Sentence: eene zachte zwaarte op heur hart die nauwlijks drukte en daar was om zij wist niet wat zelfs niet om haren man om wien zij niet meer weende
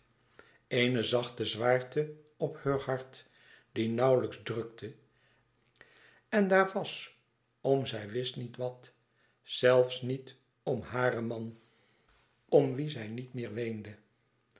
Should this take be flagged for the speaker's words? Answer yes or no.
no